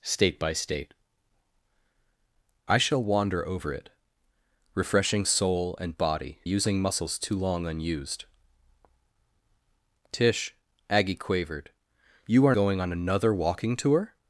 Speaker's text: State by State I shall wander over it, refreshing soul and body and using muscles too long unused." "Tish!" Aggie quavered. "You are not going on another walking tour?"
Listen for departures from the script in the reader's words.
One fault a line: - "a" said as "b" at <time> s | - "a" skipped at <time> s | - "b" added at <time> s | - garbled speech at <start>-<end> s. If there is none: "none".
- "and" skipped at 6.4 s
- "not" skipped at 12.5 s